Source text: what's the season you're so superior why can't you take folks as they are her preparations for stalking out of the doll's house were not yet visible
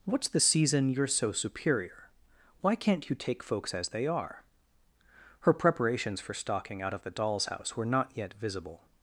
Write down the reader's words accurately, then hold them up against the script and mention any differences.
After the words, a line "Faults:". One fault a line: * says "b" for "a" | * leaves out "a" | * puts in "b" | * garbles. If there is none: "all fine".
what's the season you're so superior why can't you take folks as they are her preparations for stalking out of the doll's house were not yet visible
Faults:
all fine